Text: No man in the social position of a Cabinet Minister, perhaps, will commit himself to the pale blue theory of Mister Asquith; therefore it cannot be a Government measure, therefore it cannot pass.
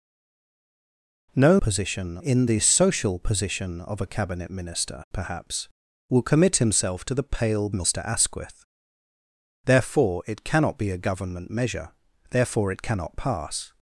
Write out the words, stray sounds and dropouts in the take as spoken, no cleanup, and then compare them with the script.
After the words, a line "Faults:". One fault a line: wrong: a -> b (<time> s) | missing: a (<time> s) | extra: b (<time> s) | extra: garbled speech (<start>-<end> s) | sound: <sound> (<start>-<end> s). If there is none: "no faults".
No position in the social position of a Cabinet Minister, perhaps, will commit himself to the pale Mister Asquith; therefore it cannot be a Government measure, therefore it cannot pass.
Faults:
wrong: man -> position (1.6 s)
missing: blue theory of (7.7 s)